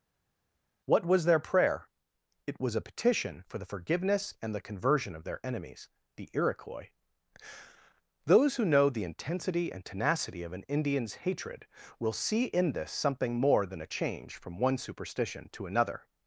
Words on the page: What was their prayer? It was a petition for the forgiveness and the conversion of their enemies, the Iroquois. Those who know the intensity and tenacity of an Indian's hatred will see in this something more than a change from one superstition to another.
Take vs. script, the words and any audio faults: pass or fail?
pass